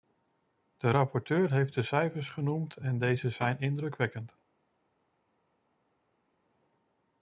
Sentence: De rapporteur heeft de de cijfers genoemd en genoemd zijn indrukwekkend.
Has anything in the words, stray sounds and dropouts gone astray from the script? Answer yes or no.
yes